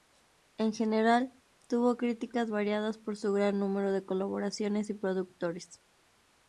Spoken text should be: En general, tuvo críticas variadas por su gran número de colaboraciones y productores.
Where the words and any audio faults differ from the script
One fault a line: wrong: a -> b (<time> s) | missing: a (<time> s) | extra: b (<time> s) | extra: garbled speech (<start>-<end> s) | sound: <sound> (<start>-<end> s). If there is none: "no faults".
no faults